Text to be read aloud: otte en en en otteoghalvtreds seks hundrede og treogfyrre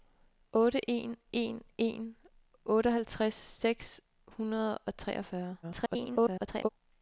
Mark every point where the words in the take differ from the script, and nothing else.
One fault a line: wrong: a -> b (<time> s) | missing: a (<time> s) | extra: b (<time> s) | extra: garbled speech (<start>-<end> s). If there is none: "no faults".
extra: garbled speech (5.6-6.7 s)